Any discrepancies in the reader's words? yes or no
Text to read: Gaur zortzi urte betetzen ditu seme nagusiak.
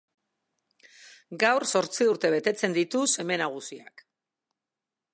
no